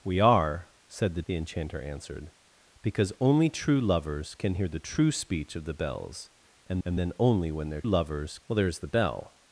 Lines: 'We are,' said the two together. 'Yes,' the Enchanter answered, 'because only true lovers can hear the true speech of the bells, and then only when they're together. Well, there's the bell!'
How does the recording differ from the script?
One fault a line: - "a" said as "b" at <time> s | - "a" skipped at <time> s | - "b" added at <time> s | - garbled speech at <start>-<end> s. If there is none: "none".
- "two together Yes" skipped at 1.2 s
- "and" added at 6.8 s
- "together" said as "lovers" at 7.8 s